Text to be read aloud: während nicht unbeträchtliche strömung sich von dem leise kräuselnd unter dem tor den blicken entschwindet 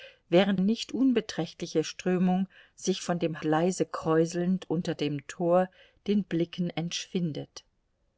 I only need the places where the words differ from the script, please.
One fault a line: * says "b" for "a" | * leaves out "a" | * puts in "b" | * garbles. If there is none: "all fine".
all fine